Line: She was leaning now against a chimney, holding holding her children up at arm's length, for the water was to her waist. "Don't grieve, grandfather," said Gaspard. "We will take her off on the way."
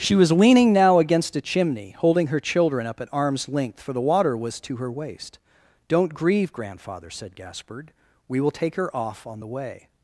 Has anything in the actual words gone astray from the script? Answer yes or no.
yes